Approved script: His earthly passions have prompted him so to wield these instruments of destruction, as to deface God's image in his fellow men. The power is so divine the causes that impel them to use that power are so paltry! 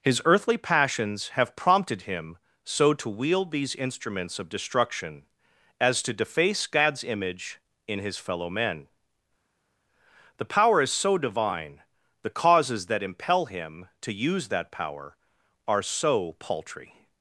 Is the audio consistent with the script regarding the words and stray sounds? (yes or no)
no